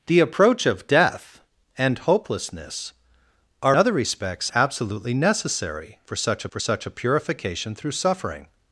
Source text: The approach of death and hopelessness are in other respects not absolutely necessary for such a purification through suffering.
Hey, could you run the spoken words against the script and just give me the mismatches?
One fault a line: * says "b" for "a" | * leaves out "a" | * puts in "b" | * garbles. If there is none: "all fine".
* leaves out "in"
* leaves out "not"
* puts in "for such"